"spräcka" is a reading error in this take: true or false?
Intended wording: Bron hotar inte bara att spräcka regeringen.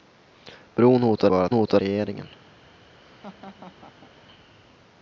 true